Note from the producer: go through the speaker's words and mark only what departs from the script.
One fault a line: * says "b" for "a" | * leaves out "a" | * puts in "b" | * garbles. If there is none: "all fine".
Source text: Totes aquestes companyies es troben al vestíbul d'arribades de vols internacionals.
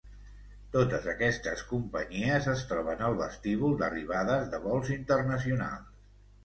all fine